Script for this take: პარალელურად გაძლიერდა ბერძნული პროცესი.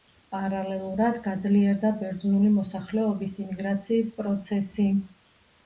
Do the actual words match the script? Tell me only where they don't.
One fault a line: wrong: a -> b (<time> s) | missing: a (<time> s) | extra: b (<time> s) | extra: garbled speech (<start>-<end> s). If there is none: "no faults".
extra: მოსახლეობის იმიგრაციის (2.6 s)